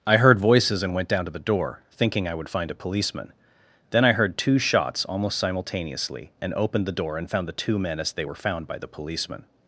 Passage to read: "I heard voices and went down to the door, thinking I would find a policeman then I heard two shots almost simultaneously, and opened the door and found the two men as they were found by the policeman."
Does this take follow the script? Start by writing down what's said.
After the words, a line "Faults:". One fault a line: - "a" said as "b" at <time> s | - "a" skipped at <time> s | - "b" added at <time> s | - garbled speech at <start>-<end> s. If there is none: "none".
"I heard voices and went down to the door, thinking I would find a policeman then I heard two shots almost simultaneously, and opened the door and found the two men as they were found by the policeman."
Faults:
none